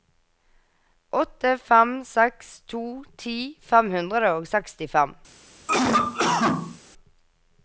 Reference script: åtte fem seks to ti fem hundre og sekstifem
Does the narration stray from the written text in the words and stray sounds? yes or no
yes